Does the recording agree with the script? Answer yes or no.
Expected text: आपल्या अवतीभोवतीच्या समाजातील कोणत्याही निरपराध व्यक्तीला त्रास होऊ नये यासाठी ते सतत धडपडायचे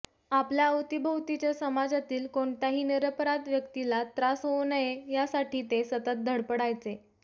yes